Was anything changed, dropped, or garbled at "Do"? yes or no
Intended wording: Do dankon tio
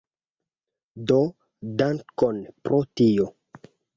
no